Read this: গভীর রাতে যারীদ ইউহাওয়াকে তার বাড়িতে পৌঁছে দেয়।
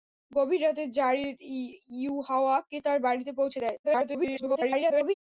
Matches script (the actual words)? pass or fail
fail